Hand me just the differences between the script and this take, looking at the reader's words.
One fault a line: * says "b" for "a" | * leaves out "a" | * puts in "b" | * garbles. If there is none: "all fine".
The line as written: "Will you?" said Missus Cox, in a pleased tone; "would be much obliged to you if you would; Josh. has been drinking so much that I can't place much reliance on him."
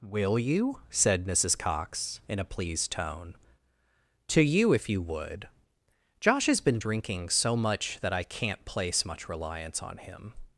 * leaves out "would be much obliged"